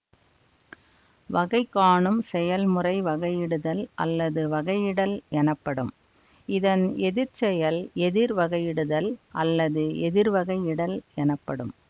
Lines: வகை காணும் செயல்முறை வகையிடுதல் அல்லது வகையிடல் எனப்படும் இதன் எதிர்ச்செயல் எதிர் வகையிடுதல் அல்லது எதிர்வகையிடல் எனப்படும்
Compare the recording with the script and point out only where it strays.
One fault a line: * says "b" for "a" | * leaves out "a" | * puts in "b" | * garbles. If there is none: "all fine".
all fine